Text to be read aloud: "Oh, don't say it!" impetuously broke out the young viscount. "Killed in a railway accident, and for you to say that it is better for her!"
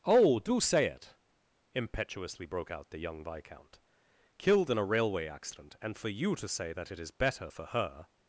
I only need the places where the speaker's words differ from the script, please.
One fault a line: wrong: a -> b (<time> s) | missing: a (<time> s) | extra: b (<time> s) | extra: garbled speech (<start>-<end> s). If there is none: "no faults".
wrong: don't -> do (0.4 s)